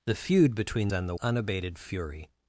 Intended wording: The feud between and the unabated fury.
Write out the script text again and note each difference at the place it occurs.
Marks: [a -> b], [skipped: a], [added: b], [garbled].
The feud between and the unabated fury.